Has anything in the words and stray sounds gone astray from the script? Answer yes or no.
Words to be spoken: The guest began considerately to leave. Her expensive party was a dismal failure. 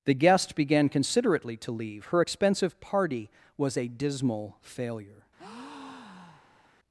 yes